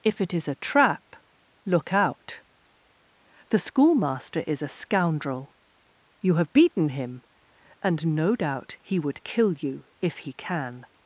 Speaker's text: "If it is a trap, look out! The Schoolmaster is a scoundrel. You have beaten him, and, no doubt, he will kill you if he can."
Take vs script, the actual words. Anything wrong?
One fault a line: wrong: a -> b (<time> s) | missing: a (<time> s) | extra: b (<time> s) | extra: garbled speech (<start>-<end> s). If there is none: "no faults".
wrong: will -> would (9.0 s)